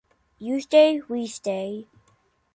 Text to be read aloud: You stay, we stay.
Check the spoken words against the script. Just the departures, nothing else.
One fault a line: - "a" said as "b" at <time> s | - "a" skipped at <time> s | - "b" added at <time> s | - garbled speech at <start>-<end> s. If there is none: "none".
none